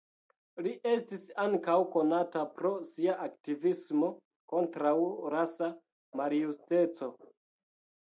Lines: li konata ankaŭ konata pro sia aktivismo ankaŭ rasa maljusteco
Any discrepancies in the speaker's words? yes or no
yes